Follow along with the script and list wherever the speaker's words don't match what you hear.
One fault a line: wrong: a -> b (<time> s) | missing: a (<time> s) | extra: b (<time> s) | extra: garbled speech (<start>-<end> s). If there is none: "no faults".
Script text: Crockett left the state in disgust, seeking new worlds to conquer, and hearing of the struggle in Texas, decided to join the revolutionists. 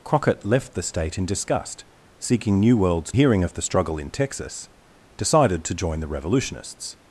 missing: to conquer and (3.1 s)